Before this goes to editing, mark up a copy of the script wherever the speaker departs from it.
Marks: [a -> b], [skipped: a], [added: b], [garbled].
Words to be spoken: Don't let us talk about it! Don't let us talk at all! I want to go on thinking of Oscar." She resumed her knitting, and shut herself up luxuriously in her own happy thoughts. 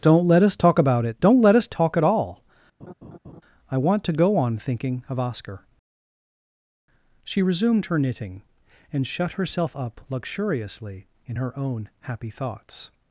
Don't let us talk about it! Don't let us talk at all! I want to go on thinking of Oscar." She resumed her knitting, and shut herself up luxuriously in her own happy thoughts.